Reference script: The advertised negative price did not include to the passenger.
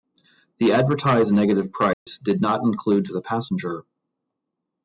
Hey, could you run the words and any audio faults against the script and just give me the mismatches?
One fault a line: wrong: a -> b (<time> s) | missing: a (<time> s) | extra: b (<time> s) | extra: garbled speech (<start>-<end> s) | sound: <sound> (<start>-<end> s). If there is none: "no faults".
sound: dropout (1.9-2.1 s)